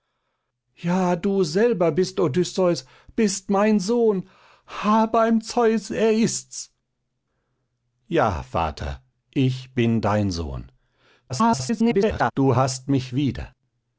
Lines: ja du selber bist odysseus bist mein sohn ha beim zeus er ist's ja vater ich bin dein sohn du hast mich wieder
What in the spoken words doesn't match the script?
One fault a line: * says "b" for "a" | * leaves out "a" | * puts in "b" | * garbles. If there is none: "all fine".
* garbles